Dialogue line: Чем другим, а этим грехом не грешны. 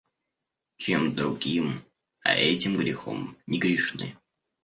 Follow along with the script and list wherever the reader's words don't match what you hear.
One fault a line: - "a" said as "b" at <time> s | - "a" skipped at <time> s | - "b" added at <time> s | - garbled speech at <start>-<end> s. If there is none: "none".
none